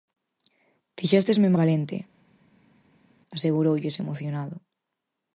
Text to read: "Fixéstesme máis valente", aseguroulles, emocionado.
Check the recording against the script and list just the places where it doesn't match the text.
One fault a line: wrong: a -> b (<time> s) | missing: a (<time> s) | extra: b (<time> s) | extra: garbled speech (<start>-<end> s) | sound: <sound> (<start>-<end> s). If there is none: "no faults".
missing: máis (1.5 s)